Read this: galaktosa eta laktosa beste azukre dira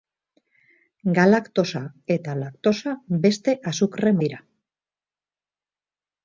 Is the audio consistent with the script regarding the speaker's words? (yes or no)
yes